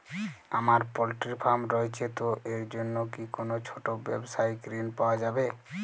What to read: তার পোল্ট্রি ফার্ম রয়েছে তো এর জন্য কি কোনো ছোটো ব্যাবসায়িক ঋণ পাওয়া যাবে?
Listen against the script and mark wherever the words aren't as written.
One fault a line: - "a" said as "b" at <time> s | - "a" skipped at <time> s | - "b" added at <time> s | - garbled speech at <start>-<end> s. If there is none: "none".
- "তার" said as "আমার" at 0.5 s